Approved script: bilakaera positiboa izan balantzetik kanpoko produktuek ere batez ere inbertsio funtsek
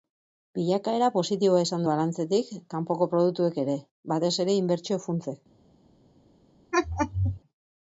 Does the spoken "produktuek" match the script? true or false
true